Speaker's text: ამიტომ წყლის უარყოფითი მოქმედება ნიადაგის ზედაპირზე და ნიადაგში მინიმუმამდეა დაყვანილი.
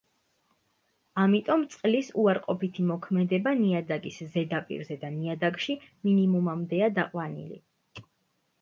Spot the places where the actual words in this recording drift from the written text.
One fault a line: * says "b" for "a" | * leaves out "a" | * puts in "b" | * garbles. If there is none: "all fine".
all fine